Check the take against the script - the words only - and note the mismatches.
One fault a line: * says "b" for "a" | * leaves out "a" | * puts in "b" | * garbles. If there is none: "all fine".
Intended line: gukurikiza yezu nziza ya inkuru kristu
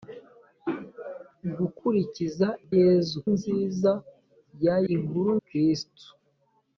all fine